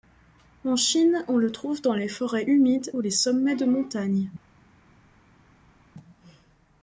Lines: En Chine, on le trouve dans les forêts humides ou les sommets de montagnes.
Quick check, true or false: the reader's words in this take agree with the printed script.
true